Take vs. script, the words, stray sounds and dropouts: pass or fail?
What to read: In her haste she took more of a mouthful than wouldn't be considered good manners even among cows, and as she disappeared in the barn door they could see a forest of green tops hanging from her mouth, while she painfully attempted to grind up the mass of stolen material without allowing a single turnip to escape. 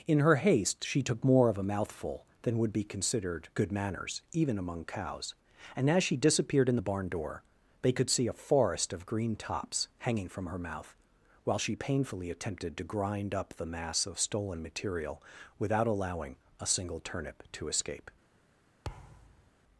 fail